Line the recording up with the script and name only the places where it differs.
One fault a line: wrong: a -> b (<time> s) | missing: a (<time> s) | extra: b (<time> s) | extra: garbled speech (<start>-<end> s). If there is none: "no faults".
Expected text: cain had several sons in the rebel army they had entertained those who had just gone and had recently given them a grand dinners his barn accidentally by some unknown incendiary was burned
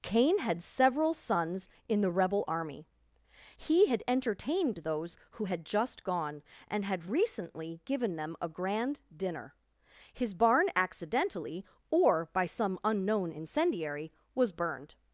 wrong: they -> he (3.6 s)
wrong: dinners -> dinner (9.2 s)
extra: or (11.9 s)